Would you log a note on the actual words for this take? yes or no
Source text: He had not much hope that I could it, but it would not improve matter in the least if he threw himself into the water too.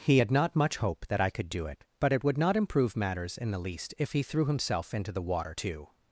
yes